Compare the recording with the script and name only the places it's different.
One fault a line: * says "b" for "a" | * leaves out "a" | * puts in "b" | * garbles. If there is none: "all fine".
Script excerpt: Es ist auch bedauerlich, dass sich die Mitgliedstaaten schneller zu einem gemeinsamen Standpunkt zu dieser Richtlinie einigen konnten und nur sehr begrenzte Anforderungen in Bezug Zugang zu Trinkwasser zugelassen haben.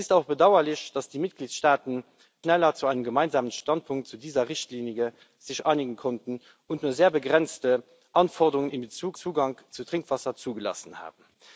all fine